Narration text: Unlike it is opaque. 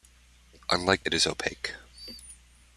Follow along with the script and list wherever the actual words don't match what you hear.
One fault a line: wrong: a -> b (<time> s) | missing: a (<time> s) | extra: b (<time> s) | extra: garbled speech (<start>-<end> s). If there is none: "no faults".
no faults